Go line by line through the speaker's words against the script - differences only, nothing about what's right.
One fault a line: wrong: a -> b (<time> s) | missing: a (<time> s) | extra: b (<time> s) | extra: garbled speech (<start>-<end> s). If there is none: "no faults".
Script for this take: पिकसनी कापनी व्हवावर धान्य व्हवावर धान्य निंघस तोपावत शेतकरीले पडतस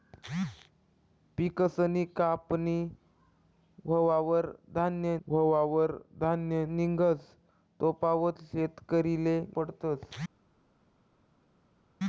no faults